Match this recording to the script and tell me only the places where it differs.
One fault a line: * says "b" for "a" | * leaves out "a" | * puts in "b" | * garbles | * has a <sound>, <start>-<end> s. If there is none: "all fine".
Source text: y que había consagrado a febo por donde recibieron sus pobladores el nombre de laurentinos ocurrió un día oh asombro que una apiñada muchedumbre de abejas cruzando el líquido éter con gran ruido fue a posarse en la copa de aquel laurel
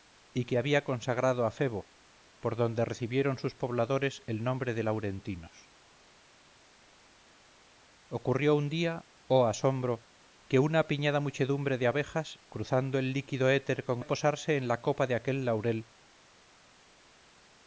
* leaves out "gran ruido fue"